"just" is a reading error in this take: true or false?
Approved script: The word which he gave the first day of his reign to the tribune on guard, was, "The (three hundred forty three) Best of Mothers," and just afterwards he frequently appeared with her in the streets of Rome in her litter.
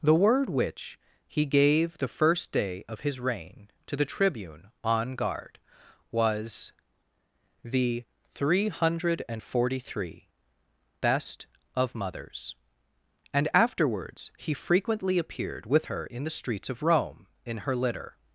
true